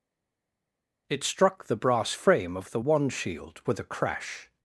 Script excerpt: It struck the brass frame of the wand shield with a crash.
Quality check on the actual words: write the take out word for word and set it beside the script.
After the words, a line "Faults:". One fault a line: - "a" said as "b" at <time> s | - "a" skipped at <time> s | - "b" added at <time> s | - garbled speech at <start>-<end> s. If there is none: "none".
It struck the brass frame of the wand shield with a crash.
Faults:
none